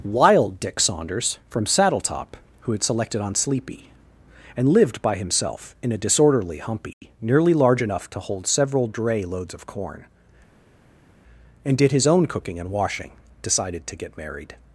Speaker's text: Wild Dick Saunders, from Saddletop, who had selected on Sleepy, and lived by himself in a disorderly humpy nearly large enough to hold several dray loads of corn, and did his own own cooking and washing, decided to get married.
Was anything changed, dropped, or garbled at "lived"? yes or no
no